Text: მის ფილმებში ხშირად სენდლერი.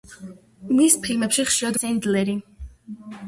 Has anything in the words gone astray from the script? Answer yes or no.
no